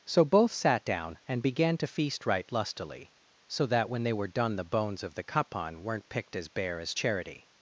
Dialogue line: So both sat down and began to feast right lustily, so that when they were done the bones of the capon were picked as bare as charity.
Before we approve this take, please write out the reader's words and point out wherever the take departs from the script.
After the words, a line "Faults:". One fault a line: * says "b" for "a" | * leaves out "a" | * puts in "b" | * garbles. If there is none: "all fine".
So both sat down and began to feast right lustily, so that when they were done the bones of the capon weren't picked as bare as charity.
Faults:
* says "weren't" for "were"